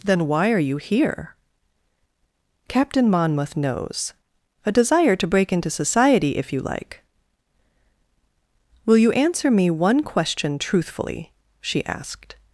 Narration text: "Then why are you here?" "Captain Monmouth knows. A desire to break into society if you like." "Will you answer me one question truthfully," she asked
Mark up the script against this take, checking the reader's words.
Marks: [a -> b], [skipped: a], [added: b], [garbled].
"Then why are you here?" "Captain Monmouth knows. A desire to break into society if you like." "Will you answer me one question truthfully," she asked